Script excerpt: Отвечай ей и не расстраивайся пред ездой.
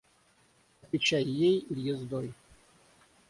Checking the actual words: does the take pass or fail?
fail